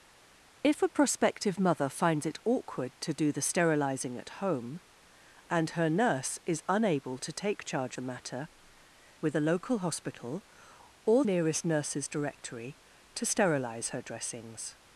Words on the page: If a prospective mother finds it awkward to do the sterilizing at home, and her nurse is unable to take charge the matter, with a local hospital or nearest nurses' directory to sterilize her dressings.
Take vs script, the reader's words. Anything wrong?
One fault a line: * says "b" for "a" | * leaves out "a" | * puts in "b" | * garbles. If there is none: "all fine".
all fine